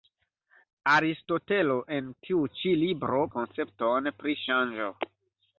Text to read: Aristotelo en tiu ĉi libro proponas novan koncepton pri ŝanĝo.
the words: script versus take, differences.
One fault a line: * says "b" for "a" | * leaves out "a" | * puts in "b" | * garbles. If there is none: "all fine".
* leaves out "proponas novan"